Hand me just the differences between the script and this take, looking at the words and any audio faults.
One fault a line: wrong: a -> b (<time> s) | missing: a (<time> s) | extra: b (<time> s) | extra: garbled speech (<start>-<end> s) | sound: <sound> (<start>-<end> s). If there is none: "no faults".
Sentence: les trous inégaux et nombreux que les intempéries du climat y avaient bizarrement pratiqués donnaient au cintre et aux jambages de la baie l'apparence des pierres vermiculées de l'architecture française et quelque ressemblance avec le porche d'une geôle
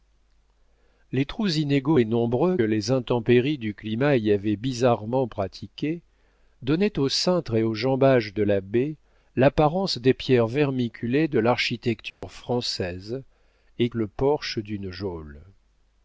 missing: que (2.6 s)
sound: dropout (12.1-12.2 s)
missing: quelque ressemblance avec (13.9 s)